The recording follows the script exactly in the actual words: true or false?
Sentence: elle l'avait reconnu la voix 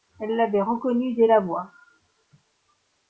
false